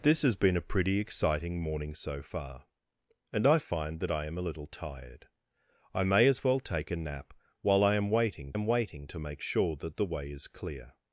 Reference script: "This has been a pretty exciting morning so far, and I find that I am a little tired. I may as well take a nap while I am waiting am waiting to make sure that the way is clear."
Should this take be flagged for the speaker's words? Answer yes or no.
no